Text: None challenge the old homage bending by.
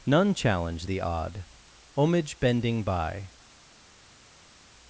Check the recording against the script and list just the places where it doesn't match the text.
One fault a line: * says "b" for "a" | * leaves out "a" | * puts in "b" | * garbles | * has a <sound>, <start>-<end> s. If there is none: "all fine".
* says "odd" for "old"